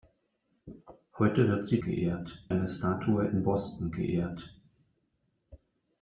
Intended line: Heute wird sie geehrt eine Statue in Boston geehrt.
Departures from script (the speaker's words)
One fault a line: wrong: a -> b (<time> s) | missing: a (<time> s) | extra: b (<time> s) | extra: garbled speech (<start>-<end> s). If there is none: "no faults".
no faults